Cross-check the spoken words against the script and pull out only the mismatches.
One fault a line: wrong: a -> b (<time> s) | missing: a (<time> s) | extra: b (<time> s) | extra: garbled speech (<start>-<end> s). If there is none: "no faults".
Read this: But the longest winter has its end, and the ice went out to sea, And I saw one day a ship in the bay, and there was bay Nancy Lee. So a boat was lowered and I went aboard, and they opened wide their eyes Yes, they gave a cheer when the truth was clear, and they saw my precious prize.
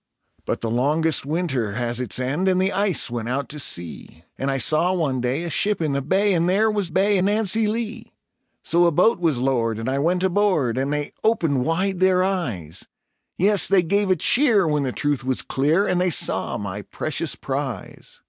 no faults